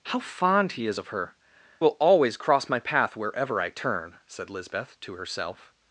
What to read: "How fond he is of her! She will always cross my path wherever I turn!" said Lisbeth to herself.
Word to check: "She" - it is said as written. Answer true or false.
false